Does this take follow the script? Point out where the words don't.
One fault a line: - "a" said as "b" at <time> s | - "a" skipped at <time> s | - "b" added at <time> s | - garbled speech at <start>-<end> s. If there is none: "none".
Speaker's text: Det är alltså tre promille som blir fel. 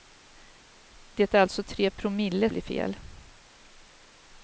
- "som" skipped at 2.5 s